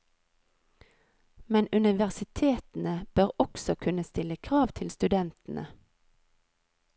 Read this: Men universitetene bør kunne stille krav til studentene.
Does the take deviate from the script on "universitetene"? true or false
false